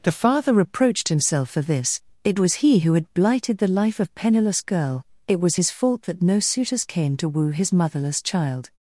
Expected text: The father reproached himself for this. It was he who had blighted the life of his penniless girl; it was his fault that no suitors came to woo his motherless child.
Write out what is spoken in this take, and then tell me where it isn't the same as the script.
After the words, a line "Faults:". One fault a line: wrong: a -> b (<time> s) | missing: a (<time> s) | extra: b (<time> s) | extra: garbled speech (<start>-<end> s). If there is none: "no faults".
The father reproached himself for this. It was he who had blighted the life of penniless girl; it was his fault that no suitors came to woo his motherless child.
Faults:
missing: his (4.1 s)